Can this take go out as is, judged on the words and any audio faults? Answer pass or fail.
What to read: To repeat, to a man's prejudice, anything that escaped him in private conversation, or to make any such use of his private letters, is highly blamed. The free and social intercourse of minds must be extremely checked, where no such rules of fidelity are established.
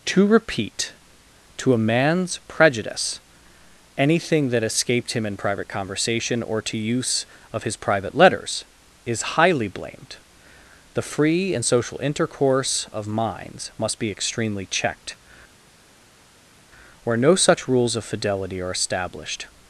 fail